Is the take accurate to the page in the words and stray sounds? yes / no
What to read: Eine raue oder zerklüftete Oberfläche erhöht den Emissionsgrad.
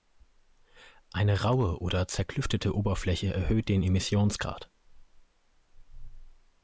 yes